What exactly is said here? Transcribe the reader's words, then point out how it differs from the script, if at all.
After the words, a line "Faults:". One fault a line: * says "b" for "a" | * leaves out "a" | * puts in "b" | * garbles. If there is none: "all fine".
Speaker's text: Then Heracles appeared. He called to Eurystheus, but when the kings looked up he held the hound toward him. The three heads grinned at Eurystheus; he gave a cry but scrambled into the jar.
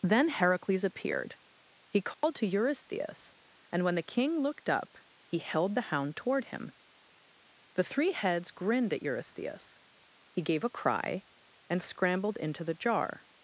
Then Heracles appeared. He called to Eurystheus, and when the king looked up he held the hound toward him. The three heads grinned at Eurystheus; he gave a cry and scrambled into the jar.
Faults:
* says "and" for "but"
* says "king" for "kings"
* says "and" for "but"